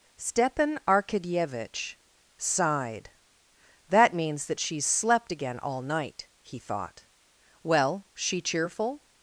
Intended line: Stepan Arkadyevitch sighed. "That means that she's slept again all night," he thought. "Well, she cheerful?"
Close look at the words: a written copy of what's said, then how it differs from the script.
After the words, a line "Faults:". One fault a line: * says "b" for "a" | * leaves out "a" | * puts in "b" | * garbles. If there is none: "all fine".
Stepan Arkadyevitch sighed. "That means that she's slept again all night," he thought. "Well, she cheerful?"
Faults:
all fine